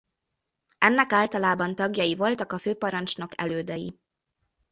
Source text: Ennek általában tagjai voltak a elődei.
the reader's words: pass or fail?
fail